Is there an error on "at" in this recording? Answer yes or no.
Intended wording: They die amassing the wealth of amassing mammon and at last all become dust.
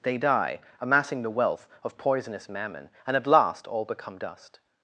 no